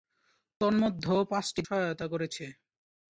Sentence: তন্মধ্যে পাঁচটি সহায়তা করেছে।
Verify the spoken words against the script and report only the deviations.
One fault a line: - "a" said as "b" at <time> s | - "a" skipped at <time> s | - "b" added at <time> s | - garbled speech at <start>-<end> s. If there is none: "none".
none